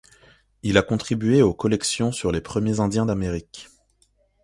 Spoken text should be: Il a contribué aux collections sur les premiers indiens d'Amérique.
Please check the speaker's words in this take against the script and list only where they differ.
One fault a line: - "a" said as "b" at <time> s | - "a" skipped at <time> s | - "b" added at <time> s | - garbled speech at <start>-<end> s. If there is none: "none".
none